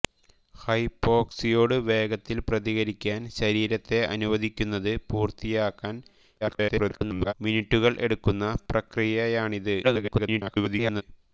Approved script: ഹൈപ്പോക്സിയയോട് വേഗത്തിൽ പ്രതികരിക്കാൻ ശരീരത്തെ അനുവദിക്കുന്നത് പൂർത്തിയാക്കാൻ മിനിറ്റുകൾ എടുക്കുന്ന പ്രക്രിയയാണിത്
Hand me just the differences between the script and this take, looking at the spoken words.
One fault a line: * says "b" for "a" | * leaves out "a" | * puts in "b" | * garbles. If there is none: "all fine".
* garbles
* garbles